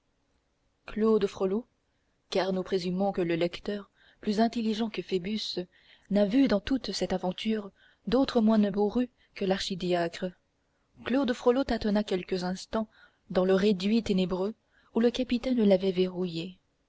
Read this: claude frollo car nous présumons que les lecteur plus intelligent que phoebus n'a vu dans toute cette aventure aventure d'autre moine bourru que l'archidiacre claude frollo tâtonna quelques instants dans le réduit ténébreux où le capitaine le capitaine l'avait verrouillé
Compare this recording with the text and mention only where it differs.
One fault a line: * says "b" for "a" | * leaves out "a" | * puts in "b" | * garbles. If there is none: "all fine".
* says "le" for "les"
* leaves out "aventure"
* leaves out "le capitaine"